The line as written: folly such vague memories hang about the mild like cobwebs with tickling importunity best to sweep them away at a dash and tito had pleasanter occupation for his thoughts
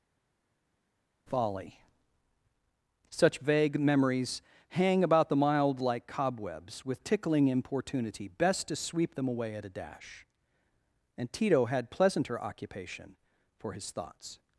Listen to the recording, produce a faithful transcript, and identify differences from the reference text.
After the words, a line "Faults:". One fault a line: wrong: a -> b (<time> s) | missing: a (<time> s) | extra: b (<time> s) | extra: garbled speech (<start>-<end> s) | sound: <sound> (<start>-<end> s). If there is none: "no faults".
folly such vague memories hang about the mild like cobwebs with tickling importunity best to sweep them away at a dash and tito had pleasanter occupation for his thoughts
Faults:
no faults